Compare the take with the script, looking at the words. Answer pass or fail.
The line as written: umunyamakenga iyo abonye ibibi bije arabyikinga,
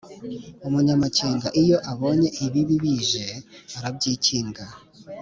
pass